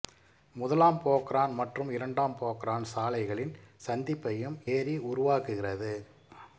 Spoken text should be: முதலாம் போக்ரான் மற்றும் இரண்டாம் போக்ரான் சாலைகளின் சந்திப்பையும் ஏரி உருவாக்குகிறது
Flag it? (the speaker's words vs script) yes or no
no